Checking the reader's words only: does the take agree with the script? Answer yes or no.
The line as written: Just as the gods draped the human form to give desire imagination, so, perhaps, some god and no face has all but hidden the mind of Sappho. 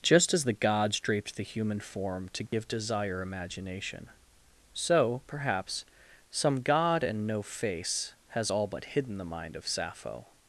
yes